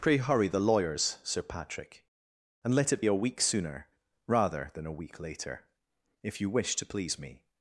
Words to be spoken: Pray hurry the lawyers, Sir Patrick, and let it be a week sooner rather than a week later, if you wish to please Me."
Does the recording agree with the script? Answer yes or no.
no